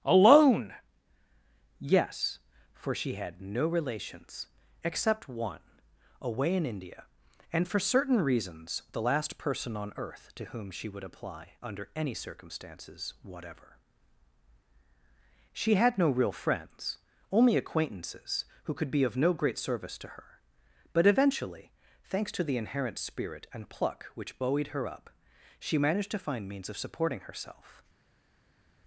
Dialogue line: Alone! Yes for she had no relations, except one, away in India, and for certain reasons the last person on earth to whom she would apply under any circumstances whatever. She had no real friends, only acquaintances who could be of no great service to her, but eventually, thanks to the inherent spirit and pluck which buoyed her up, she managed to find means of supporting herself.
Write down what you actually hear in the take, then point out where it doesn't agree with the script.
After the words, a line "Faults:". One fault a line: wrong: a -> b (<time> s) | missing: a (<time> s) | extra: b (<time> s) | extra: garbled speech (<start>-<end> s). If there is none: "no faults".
Alone! Yes for she had no relations, except one, away in India, and for certain reasons the last person on earth to whom she would apply under any circumstances whatever. She had no real friends, only acquaintances who could be of no great service to her, but eventually, thanks to the inherent spirit and pluck which buoyed her up, she managed to find means of supporting herself.
Faults:
no faults